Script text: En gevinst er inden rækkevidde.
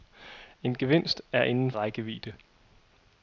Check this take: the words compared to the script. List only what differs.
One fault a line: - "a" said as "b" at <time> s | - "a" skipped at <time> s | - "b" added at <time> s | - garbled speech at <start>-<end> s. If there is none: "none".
none